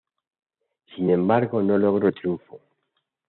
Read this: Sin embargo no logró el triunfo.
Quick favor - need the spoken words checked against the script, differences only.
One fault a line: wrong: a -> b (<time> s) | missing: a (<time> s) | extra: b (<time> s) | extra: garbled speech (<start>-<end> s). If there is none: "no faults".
no faults